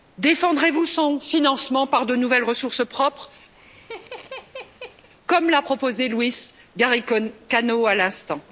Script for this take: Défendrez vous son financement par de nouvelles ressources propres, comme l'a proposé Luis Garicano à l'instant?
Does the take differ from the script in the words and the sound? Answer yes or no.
yes